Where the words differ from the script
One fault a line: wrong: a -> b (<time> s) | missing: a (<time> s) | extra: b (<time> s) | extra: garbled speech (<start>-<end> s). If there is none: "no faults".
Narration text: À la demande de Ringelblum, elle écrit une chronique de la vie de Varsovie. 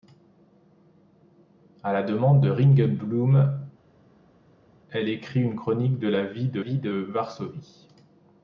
extra: vie de (6.6 s)